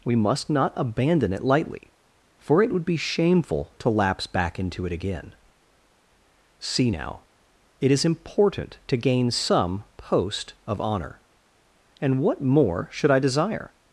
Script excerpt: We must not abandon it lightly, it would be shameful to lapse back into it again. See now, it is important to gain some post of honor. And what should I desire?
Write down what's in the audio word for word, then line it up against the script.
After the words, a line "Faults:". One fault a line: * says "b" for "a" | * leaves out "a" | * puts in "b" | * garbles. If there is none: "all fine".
We must not abandon it lightly, for it would be shameful to lapse back into it again. See now, it is important to gain some post of honor. And what more should I desire?
Faults:
* puts in "for"
* puts in "more"